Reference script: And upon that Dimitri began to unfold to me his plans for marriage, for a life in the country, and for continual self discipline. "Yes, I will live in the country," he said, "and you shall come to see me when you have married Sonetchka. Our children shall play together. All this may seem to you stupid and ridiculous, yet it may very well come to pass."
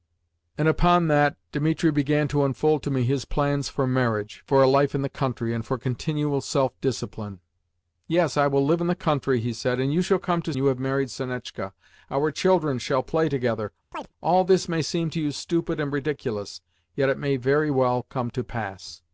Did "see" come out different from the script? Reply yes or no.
yes